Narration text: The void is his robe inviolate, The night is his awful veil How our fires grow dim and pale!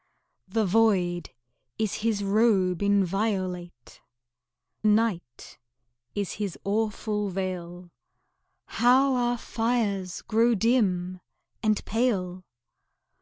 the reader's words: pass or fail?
fail